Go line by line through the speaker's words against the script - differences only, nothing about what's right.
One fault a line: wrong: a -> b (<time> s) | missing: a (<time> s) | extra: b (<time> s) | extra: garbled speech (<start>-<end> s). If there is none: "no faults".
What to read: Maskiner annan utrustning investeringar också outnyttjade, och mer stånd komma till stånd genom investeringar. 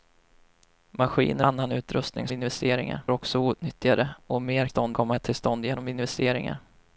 no faults